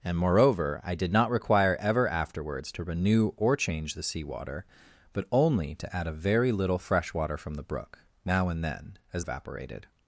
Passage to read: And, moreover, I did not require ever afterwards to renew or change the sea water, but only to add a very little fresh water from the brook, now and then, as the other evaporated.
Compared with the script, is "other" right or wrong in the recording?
wrong